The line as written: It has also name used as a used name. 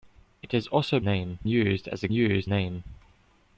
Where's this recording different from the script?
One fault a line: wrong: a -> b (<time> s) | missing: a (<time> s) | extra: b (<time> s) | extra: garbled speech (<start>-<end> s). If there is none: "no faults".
no faults